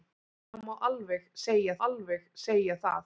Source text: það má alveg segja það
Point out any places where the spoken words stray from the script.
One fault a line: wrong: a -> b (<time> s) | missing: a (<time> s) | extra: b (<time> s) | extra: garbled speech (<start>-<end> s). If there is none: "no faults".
extra: alveg segja (1.9 s)